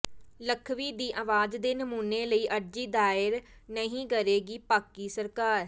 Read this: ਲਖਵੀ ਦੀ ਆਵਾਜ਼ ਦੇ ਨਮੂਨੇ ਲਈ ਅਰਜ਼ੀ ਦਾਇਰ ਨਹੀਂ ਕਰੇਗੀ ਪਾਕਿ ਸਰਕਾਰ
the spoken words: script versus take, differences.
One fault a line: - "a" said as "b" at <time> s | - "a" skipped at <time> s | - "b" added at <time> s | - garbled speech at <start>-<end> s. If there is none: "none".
none